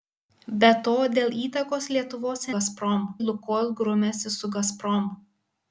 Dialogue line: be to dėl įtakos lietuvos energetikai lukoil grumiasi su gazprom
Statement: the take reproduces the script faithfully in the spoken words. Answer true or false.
false